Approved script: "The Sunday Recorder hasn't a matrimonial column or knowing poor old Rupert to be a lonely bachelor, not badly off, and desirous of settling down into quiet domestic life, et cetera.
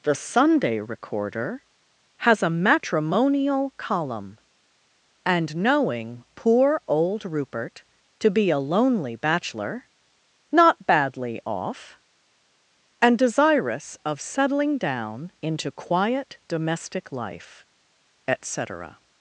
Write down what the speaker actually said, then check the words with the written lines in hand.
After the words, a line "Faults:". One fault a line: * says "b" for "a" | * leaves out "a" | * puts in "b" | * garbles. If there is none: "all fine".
"The Sunday Recorder has a matrimonial column and knowing poor old Rupert to be a lonely bachelor, not badly off, and desirous of settling down into quiet domestic life, et cetera.
Faults:
* says "has" for "hasn't"
* says "and" for "or"